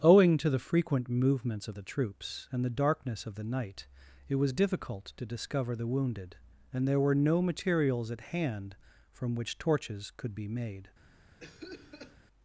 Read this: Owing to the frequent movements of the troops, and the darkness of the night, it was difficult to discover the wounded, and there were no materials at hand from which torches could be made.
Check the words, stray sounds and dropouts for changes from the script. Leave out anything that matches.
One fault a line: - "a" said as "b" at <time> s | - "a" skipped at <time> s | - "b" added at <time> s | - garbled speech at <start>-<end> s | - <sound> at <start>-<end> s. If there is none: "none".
- cough at 11.4-12.2 s